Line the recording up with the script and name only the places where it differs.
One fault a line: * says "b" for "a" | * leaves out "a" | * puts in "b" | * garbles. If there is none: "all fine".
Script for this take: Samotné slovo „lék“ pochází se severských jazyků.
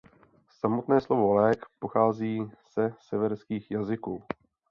all fine